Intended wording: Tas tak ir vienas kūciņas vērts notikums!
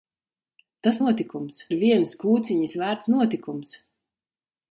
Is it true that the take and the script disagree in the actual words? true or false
true